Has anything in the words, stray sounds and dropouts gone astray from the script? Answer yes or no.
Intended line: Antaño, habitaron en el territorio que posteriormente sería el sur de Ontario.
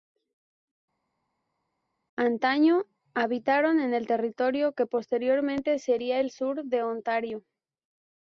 no